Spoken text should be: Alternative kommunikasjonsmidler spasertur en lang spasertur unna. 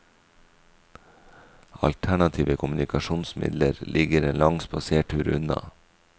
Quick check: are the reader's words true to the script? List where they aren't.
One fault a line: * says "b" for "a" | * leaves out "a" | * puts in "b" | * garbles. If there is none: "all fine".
* says "ligger" for "spasertur"